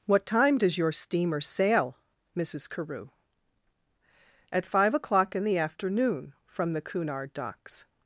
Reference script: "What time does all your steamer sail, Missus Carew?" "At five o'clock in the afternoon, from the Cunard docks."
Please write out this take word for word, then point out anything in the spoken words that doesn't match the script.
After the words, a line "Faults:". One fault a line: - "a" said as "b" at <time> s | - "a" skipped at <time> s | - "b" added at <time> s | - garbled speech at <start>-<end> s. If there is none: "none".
"What time does your steamer sail, Missus Carew?" "At five o'clock in the afternoon, from the Cunard docks."
Faults:
- "all" skipped at 0.8 s